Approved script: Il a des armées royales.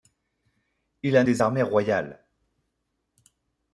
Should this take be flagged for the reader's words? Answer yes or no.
no